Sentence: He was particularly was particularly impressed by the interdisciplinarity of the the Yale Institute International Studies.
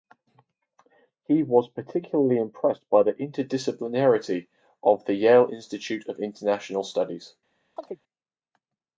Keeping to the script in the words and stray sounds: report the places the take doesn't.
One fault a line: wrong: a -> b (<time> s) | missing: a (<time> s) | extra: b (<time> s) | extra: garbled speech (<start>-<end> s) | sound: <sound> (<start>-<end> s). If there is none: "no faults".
missing: was particularly (2.4 s)
missing: the (5.1 s)
extra: of (6.1 s)
sound: chirp (7.8-8.0 s)